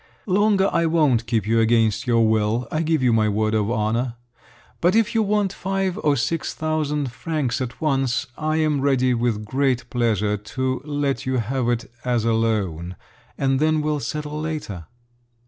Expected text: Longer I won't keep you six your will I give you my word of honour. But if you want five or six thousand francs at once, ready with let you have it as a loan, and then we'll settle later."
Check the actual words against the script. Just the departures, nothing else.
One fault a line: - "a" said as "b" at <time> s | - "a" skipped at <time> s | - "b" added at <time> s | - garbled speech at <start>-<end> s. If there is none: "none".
- "six" said as "against" at 1.6 s
- "I am" added at 8.3 s
- "great pleasure to" added at 9.4 s